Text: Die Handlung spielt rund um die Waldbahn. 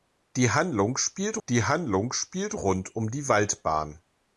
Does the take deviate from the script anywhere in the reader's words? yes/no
yes